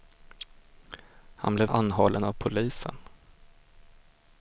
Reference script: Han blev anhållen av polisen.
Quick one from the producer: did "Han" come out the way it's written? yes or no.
yes